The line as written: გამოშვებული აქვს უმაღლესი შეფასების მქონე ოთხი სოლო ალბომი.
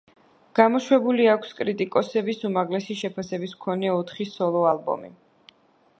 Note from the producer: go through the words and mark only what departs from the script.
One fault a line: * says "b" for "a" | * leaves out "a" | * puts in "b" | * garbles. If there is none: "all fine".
* puts in "კრიტიკოსების"